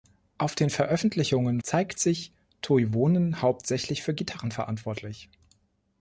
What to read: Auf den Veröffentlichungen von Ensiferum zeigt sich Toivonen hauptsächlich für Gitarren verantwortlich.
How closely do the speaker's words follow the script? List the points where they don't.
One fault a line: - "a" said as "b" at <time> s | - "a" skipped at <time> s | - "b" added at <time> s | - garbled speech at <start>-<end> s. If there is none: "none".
- "von Ensiferum" skipped at 1.6 s